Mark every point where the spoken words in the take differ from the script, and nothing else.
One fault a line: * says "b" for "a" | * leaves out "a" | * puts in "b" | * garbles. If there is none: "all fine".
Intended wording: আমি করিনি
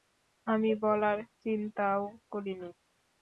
* puts in "বলার চিন্তাও"